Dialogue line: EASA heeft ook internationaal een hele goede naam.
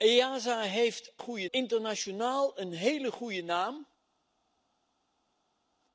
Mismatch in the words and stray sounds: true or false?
true